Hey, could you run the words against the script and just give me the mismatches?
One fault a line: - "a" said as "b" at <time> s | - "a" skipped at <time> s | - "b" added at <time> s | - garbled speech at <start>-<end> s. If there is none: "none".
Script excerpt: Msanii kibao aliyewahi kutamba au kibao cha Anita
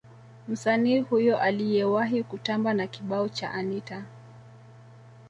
- "kibao" said as "huyo" at 1.0 s
- "au" said as "na" at 2.7 s